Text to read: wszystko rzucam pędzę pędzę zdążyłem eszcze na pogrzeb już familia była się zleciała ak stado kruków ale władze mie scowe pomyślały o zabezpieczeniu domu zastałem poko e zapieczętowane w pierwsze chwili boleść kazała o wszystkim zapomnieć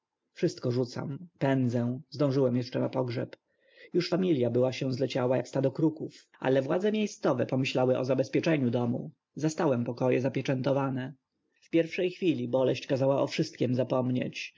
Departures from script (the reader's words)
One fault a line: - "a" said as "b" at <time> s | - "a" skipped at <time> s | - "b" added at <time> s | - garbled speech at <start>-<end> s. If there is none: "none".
- "pędzę" skipped at 2.0 s